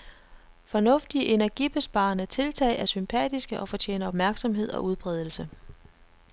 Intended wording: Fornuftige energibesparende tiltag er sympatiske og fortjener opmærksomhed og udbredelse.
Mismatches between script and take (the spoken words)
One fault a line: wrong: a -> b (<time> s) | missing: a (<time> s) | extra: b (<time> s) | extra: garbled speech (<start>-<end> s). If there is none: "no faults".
no faults